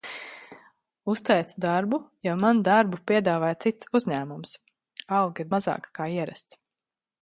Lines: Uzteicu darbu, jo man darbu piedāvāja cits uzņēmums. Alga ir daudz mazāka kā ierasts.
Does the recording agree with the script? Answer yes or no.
no